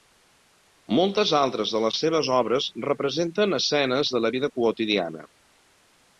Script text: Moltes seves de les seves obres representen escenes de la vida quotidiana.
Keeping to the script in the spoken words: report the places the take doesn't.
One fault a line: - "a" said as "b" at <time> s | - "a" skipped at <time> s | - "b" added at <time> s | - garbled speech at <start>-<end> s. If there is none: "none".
- "seves" said as "altres" at 1.4 s